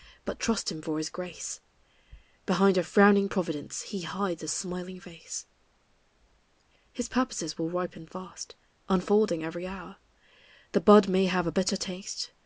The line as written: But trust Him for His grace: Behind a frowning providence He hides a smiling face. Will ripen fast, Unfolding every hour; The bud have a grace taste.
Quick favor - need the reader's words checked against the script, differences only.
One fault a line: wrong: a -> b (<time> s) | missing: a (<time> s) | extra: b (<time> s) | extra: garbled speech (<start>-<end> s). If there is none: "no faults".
extra: His purposes (6.9 s)
extra: may (11.1 s)
wrong: grace -> bitter (11.5 s)